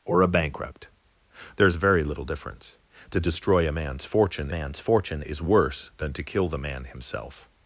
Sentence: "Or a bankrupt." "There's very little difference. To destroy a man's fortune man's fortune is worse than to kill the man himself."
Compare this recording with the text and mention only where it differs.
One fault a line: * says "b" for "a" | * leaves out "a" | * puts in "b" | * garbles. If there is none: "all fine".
all fine